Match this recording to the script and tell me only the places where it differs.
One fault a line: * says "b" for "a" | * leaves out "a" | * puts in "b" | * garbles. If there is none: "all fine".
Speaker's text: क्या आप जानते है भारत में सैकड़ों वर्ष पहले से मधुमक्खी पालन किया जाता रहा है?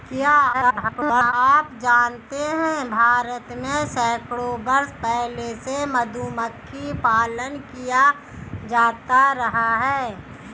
* garbles